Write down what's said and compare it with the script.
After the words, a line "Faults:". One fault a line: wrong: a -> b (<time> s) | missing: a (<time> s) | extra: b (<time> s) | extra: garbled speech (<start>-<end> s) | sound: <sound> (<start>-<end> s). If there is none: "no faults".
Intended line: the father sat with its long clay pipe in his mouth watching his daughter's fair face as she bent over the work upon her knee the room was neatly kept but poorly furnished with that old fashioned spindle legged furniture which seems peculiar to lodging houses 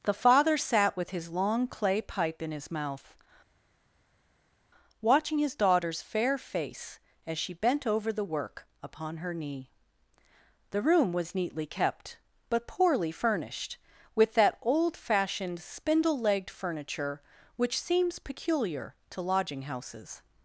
the father sat with his long clay pipe in his mouth watching his daughter's fair face as she bent over the work upon her knee the room was neatly kept but poorly furnished with that old fashioned spindle legged furniture which seems peculiar to lodging houses
Faults:
wrong: its -> his (1.1 s)